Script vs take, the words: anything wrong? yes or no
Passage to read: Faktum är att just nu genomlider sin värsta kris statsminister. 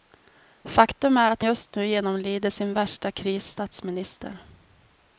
no